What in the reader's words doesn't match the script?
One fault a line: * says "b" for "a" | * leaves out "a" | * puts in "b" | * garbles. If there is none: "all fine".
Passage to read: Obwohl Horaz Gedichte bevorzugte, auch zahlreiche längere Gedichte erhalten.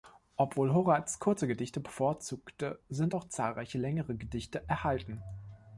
* puts in "kurze"
* puts in "sind"